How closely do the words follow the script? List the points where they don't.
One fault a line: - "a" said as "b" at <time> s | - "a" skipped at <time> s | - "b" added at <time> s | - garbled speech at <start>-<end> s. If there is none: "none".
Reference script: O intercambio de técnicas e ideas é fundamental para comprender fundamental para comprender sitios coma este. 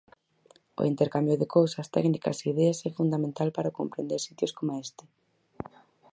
- "cousas" added at 1.6 s
- "fundamental para comprender" skipped at 4.2 s